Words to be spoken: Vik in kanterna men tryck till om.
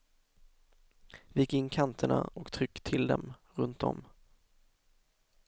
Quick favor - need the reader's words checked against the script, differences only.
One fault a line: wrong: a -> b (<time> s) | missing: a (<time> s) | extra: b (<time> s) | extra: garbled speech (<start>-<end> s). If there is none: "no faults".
wrong: men -> och (2.3 s)
extra: dem runt (3.1 s)